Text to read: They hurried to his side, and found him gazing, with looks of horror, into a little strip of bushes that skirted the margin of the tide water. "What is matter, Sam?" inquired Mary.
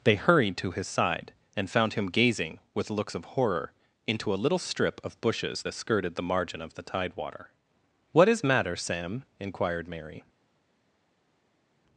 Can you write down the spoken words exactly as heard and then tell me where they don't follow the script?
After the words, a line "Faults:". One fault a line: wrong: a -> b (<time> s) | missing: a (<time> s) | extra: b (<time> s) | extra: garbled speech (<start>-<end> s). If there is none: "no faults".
They hurried to his side, and found him gazing, with looks of horror, into a little strip of bushes that skirted the margin of the tide water. "What is matter, Sam?" inquired Mary.
Faults:
no faults